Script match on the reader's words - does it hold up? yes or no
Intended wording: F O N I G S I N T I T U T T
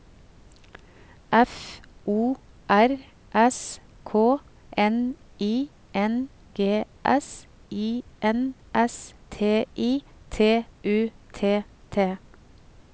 no